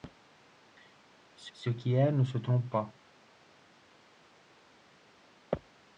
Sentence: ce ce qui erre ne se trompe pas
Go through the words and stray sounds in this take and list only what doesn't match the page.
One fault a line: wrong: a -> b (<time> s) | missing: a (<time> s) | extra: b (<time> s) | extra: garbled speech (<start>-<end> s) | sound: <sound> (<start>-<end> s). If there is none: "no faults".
no faults